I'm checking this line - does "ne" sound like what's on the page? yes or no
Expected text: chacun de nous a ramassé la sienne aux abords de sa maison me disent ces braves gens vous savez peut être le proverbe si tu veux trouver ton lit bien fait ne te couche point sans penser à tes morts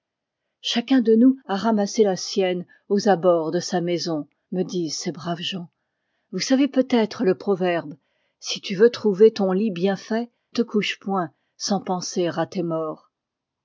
no